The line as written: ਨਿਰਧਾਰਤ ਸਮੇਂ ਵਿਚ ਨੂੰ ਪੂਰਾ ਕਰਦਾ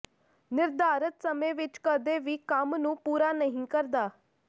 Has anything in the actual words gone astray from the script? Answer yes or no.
yes